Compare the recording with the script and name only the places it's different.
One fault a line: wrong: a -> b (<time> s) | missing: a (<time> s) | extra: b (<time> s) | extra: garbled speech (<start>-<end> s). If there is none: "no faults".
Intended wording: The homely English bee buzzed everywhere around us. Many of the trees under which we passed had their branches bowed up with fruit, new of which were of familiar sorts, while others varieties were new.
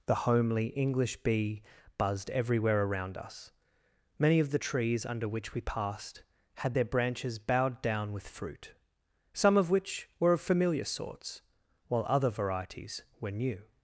wrong: up -> down (7.8 s)
wrong: new -> some (9.3 s)
wrong: others -> other (12.1 s)